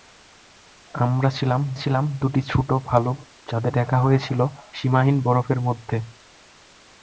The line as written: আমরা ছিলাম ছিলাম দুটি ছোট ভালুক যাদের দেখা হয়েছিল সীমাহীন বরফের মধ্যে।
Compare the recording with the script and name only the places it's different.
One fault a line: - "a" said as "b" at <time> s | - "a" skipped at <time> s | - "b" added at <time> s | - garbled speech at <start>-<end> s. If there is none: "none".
none